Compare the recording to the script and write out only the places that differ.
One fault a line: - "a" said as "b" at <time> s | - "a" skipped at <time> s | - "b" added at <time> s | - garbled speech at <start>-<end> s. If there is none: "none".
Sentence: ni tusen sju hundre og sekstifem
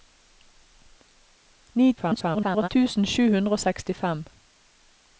- garbled speech at 2.0-2.7 s